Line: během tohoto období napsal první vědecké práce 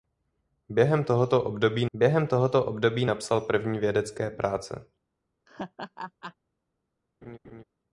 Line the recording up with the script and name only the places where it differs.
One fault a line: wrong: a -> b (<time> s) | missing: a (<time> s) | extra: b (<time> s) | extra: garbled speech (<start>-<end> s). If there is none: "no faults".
extra: během tohoto období (1.9 s)